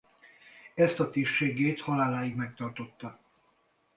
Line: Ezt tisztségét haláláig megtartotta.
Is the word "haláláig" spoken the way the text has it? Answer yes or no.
yes